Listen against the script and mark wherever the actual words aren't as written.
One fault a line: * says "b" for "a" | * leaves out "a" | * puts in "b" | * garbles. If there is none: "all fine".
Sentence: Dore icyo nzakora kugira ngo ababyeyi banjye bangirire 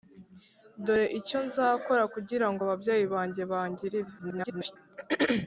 * garbles